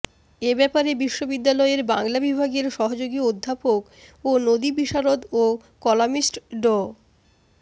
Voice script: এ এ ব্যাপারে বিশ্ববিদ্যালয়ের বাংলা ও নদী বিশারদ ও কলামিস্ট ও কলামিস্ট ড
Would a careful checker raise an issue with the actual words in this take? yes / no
yes